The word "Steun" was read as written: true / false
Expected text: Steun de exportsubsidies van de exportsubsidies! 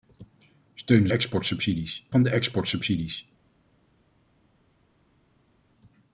true